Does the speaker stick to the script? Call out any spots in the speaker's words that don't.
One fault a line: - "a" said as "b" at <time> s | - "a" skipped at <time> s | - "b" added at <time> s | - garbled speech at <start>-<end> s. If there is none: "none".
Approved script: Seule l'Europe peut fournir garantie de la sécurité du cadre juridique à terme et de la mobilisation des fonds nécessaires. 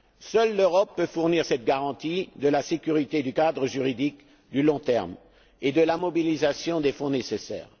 - "cette" added at 1.4 s
- "long" added at 4.6 s